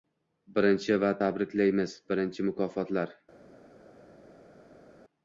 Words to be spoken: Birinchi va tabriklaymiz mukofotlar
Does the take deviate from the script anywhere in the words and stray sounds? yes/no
yes